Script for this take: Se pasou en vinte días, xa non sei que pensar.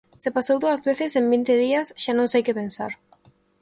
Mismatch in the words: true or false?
true